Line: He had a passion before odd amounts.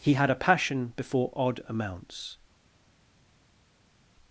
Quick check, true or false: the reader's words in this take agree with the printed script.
true